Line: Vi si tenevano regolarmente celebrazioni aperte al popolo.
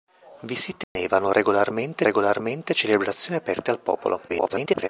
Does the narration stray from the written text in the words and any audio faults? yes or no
yes